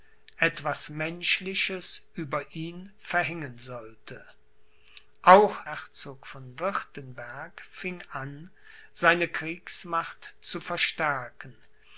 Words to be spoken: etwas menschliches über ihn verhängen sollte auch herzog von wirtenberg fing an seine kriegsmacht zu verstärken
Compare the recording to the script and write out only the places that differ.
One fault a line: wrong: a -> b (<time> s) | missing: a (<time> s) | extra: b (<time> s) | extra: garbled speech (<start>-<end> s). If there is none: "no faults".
no faults